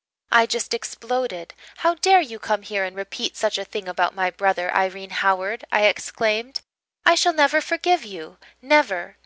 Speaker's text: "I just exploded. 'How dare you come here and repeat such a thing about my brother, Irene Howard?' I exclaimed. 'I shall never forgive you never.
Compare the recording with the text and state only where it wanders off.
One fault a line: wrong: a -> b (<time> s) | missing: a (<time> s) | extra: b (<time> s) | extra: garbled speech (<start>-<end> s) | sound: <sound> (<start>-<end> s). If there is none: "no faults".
no faults